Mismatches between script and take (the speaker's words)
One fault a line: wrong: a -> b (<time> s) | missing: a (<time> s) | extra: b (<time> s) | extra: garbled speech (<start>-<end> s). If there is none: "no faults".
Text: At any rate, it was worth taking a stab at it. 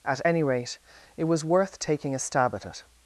no faults